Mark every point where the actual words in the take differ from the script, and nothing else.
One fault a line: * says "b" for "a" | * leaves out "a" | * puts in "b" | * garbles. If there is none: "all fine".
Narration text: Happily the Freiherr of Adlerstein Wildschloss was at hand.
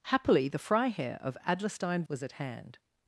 * leaves out "Wildschloss"